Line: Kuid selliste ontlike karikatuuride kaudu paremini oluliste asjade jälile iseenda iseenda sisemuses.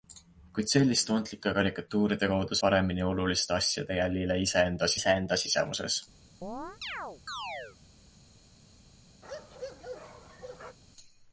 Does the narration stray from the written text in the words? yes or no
no